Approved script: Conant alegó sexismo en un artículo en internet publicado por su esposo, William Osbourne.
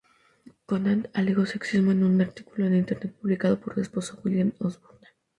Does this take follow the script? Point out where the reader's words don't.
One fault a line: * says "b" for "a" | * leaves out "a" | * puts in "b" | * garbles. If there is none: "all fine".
all fine